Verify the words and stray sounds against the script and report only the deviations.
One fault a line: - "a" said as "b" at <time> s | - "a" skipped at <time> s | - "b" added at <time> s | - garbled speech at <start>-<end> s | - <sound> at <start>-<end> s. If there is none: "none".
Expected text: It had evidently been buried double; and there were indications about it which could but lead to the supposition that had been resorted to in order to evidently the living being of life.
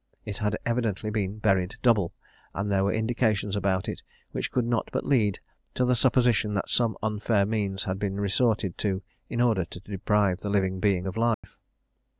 - "not" added at 4.7 s
- "some unfair means" added at 6.7 s
- "evidently" said as "deprive" at 9.8 s
- dropout at 11.3-11.4 s